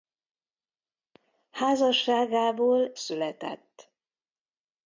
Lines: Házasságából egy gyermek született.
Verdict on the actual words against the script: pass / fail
fail